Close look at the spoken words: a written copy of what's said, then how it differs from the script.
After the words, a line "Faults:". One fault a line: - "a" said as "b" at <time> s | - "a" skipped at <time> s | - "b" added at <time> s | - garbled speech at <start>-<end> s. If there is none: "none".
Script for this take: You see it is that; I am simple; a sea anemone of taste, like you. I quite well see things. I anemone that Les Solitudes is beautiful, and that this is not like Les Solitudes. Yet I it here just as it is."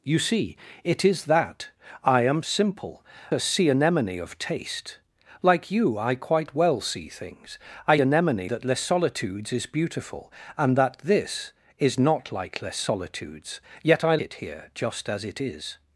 You see it is that; I am simple; a sea anemone of taste, like you. I quite well see things. I anemone that Les Solitudes is beautiful, and that this is not like Les Solitudes. Yet I it here just as it is."
Faults:
none